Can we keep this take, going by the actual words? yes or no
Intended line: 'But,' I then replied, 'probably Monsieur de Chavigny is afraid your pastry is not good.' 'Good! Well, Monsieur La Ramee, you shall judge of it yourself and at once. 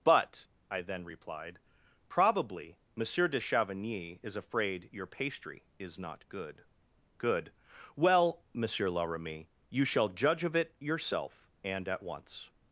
yes